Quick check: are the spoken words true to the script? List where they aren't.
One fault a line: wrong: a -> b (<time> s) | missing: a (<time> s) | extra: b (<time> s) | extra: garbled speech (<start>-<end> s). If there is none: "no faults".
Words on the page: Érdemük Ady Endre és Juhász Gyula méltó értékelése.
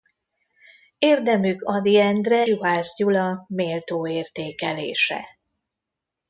missing: és (2.5 s)